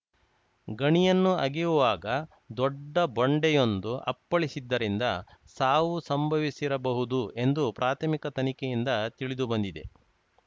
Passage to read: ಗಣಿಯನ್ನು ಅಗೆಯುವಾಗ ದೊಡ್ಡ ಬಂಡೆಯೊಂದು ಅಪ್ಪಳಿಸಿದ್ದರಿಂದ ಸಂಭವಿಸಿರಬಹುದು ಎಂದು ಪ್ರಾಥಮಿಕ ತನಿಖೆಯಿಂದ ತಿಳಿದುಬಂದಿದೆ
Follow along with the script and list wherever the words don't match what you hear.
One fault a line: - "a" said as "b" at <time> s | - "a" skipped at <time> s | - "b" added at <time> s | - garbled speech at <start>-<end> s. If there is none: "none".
- "ಸಾವು" added at 5.6 s